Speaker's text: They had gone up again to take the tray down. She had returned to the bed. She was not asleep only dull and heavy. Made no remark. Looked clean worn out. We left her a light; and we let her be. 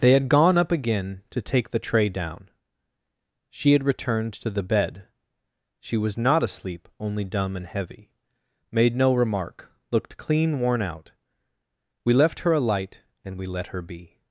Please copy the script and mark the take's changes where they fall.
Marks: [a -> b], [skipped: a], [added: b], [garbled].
They had gone up again to take the tray down. She had returned to the bed. She was not asleep only [dull -> dumb] and heavy. Made no remark. Looked clean worn out. We left her a light; and we let her be.